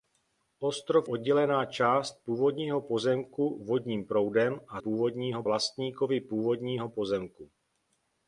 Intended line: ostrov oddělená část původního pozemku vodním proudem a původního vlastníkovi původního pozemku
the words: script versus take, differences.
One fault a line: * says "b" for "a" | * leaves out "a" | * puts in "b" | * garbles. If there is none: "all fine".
all fine